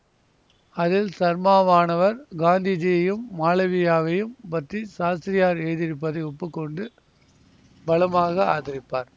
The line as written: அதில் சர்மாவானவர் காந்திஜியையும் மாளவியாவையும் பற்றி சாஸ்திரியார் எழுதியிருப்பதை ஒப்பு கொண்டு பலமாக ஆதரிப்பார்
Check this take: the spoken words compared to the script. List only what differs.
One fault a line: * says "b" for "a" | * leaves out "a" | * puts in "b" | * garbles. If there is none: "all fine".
all fine